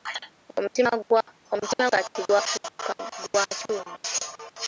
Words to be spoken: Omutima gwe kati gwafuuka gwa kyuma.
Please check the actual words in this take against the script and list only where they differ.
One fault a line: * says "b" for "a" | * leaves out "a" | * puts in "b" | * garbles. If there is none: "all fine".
* leaves out "gwe"